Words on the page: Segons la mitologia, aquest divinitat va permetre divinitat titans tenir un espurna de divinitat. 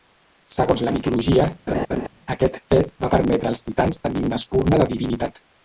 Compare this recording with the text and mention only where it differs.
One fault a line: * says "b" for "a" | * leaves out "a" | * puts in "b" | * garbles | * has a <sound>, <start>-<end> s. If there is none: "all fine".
* has a laugh, 1.7-2.1 s
* says "fet" for "divinitat"
* says "als" for "divinitat"
* says "una" for "un"